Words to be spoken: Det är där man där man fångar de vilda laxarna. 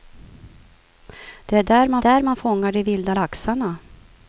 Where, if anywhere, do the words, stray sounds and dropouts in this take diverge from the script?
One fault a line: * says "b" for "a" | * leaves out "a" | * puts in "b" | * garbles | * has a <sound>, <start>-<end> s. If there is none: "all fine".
all fine